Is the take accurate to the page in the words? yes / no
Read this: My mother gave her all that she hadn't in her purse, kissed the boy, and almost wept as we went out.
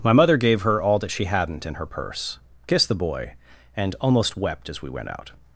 yes